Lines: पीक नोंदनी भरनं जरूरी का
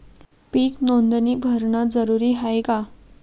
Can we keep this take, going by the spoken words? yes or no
no